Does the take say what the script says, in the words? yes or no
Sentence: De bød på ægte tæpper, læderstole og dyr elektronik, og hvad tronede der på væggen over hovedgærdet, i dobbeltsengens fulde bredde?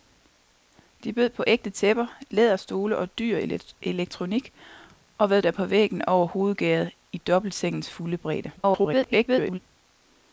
no